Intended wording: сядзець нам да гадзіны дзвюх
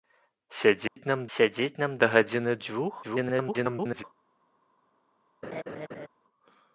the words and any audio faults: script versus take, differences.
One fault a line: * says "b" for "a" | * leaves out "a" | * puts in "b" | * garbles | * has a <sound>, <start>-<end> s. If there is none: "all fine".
* has a dropout, 0.9-1.0 s
* puts in "сядзець нам"
* garbles
* has a laugh, 5.4-6.1 s